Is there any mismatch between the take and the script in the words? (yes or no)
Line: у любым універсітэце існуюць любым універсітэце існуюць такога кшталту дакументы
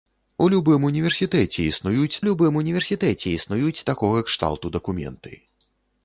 no